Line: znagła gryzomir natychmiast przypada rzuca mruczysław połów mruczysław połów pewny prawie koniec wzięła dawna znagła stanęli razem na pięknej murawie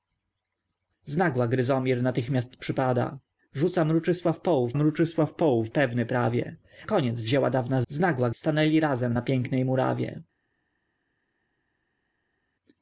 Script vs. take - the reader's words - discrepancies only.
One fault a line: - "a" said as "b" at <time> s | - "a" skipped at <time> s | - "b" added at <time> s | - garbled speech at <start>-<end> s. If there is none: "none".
none